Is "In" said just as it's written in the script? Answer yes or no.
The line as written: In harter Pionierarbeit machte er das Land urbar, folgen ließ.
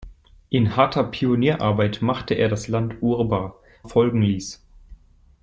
yes